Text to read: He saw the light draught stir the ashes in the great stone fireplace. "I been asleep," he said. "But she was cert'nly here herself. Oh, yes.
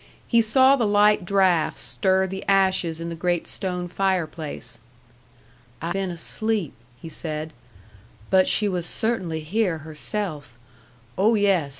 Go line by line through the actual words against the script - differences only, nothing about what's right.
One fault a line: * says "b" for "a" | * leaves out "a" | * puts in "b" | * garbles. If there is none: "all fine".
all fine